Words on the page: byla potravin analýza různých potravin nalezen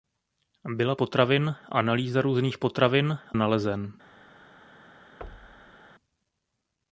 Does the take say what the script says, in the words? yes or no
yes